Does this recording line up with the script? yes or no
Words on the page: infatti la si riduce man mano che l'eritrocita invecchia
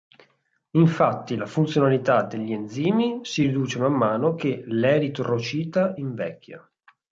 no